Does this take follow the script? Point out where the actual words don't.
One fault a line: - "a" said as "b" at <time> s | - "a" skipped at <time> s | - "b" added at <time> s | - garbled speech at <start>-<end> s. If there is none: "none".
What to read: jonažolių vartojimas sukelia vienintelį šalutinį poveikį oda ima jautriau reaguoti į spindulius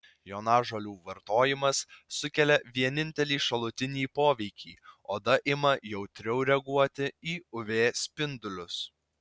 - "uv" added at 7.6 s